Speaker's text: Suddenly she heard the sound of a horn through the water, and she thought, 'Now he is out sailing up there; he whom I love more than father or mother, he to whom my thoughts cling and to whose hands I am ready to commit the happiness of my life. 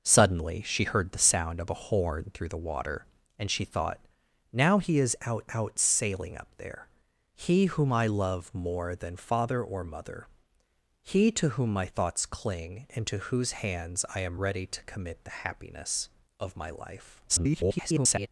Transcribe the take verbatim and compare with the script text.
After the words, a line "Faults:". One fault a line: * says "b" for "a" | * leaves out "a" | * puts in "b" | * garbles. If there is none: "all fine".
Suddenly she heard the sound of a horn through the water, and she thought, 'Now he is out out sailing up there; he whom I love more than father or mother, he to whom my thoughts cling and to whose hands I am ready to commit the happiness of my life. [garbled]
Faults:
* puts in "out"
* garbles